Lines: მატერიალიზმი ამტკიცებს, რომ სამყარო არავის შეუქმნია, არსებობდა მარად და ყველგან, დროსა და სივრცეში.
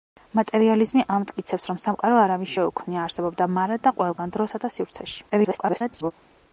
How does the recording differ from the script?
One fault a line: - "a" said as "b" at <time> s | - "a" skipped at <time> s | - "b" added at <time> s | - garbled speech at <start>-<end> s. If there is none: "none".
- garbled speech at 5.3-6.1 s